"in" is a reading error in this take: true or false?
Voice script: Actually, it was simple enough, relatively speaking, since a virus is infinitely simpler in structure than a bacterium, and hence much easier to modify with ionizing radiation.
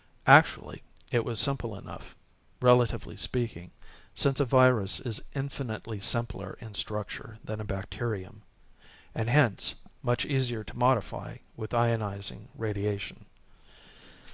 false